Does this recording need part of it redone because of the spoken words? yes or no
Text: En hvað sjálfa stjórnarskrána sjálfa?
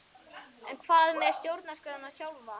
yes